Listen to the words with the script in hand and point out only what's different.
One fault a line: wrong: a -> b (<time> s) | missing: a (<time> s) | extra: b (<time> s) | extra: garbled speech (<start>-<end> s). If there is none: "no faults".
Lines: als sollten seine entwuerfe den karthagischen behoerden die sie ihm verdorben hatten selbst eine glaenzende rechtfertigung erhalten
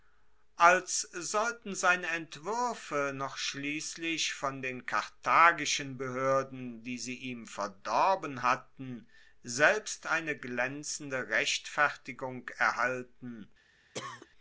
extra: noch schliesslich von (3.1 s)